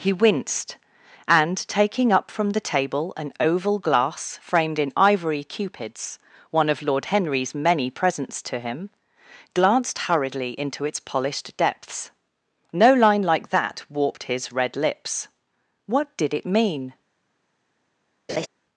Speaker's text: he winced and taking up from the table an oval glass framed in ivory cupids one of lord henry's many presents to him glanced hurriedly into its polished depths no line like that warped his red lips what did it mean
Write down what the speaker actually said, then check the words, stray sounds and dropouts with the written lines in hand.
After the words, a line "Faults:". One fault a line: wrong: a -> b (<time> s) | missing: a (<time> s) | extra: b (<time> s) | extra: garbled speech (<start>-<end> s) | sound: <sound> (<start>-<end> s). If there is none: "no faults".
he winced and taking up from the table an oval glass framed in ivory cupids one of lord henry's many presents to him glanced hurriedly into its polished depths no line like that warped his red lips what did it mean
Faults:
sound: laugh (18.3-18.5 s)